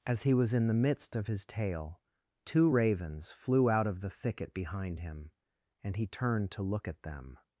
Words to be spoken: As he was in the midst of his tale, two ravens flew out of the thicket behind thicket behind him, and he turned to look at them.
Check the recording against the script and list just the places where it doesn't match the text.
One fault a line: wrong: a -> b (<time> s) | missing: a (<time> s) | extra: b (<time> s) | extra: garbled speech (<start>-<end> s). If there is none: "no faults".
missing: thicket behind (5.0 s)